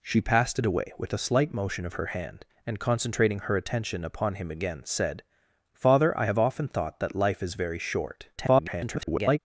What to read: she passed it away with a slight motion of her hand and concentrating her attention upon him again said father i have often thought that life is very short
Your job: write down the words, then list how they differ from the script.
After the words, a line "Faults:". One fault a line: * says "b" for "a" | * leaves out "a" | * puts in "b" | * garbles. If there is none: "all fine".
she passed it away with a slight motion of her hand and concentrating her attention upon him again said father i have often thought that life is very short [garbled]
Faults:
* garbles